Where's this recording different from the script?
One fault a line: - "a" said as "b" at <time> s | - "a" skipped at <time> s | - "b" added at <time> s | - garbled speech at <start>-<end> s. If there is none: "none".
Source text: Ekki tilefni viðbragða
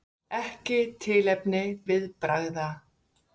none